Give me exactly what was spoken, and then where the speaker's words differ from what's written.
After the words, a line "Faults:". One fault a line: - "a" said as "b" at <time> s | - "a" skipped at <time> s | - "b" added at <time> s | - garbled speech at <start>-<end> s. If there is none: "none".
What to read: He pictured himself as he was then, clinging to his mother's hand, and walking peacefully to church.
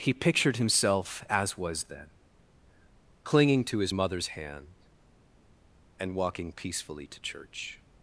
He pictured himself as was then, clinging to his mother's hand, and walking peacefully to church.
Faults:
- "he" skipped at 1.6 s